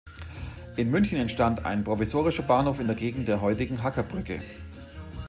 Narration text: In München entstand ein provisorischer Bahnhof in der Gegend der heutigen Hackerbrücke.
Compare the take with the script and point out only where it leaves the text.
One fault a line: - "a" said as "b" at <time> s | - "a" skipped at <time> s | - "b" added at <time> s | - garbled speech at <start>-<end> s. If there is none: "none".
none